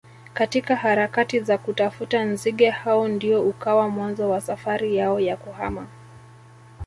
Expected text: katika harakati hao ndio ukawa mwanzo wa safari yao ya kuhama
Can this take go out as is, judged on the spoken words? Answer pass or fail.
fail